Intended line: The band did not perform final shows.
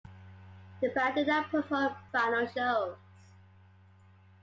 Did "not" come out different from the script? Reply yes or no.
no